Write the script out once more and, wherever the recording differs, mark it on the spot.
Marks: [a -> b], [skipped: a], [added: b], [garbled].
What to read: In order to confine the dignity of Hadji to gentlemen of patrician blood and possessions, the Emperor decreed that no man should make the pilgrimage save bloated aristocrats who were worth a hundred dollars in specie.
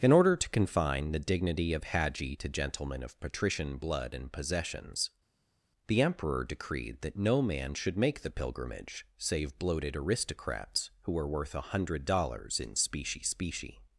In order to confine the dignity of Hadji to gentlemen of patrician blood and possessions, the Emperor decreed that no man should make the pilgrimage save bloated aristocrats who were worth a hundred dollars in specie. [added: specie]